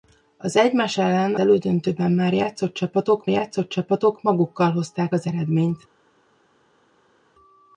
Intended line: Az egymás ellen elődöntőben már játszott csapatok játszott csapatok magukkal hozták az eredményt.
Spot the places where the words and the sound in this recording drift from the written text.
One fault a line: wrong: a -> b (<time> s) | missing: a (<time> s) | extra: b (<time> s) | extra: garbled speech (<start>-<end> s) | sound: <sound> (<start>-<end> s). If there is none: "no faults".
no faults